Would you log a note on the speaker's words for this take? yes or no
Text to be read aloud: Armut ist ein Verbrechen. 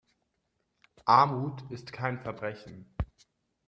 yes